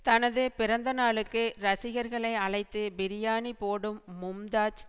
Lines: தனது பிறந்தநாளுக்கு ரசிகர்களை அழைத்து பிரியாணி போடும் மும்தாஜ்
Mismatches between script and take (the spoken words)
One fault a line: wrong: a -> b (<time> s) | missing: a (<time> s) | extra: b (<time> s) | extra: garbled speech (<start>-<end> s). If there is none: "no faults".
no faults